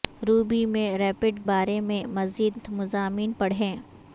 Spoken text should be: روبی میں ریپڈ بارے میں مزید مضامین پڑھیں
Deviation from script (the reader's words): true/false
false